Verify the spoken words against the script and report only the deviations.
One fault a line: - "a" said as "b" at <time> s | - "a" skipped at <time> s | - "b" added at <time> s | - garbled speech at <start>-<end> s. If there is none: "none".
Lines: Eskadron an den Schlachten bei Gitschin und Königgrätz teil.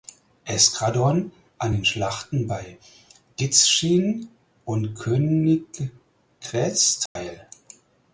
none